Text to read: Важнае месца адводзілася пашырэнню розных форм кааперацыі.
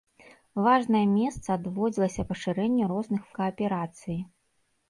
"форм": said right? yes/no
no